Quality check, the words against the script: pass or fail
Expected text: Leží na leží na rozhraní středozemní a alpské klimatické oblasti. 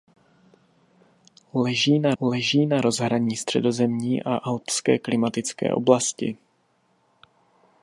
pass